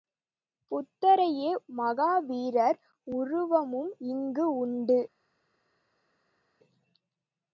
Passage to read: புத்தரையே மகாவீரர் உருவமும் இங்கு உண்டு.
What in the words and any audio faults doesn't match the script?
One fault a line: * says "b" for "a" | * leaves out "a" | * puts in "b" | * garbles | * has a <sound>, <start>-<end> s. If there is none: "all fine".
all fine